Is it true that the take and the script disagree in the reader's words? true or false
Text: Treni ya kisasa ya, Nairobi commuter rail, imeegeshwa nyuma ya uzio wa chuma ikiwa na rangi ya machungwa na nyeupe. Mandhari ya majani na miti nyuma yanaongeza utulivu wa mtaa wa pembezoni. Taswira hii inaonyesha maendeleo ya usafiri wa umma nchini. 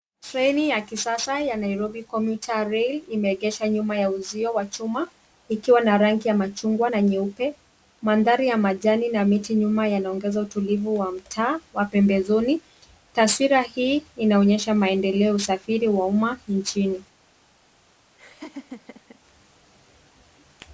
false